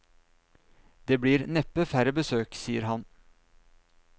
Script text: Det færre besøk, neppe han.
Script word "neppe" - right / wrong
wrong